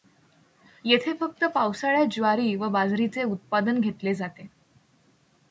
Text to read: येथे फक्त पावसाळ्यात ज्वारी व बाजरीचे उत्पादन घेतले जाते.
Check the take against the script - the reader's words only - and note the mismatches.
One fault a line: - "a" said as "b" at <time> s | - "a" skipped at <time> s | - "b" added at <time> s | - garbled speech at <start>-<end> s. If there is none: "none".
none